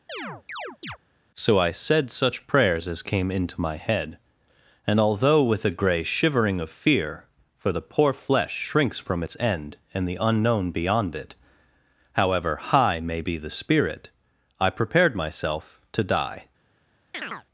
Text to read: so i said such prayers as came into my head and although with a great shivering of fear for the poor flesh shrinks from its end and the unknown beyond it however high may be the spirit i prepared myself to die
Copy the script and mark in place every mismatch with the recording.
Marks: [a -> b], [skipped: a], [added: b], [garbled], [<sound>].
[chirp] so i said such prayers as came into my head and although with a [great -> grey] shivering of fear for the poor flesh shrinks from its end and the unknown beyond it however high may be the spirit i prepared myself to die [chirp]